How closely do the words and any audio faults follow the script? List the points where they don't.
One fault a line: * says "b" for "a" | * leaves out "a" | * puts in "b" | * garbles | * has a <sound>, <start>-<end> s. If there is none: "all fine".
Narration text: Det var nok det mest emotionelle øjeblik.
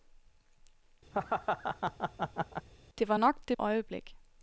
* has a laugh, 1.1-2.7 s
* leaves out "mest emotionelle"